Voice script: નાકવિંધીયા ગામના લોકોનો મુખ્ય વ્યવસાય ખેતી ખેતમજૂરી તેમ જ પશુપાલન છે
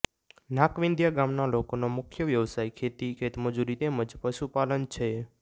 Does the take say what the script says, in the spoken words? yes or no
yes